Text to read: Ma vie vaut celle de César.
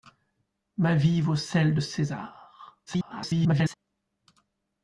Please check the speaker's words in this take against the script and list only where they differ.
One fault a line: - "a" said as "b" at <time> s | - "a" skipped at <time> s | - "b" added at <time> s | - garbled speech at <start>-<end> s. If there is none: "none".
- garbled speech at 2.9-3.7 s